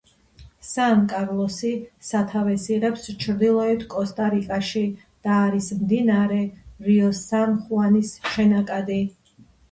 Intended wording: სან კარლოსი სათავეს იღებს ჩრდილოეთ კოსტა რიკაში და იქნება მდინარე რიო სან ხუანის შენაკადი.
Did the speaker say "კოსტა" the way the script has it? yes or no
yes